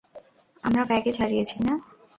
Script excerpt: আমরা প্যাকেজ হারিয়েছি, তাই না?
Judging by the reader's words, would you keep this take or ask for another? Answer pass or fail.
fail